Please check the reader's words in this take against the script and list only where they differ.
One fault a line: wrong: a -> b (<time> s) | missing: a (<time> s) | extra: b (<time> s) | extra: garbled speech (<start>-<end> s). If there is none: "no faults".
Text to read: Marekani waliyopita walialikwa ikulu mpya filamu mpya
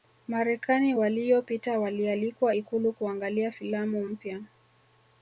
wrong: mpya -> kuangalia (2.9 s)